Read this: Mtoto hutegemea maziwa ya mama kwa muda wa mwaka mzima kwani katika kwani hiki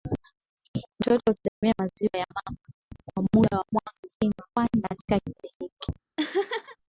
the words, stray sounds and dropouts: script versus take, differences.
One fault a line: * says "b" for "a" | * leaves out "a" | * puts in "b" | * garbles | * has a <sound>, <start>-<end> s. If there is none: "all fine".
* has a dropout, 1.5-1.6 s
* says "kipindi" for "kwani"
* has a laugh, 6.2-6.8 s